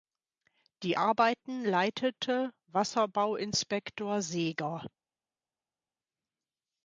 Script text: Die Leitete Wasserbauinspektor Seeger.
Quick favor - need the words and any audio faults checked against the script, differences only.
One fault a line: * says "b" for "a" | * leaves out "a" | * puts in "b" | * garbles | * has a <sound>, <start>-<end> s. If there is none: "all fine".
* puts in "Arbeiten"